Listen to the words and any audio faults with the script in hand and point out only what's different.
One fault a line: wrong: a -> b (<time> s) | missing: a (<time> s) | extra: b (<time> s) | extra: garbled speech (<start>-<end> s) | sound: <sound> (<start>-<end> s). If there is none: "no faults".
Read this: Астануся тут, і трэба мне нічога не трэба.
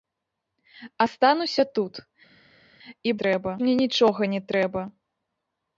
no faults